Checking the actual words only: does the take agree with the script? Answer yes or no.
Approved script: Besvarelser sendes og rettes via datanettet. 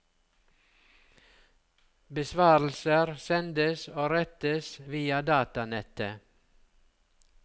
yes